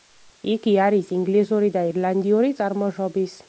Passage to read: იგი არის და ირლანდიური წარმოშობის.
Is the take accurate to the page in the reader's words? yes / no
no